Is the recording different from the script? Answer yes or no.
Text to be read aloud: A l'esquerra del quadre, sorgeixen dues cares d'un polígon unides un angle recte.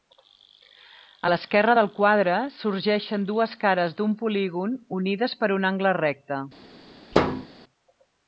yes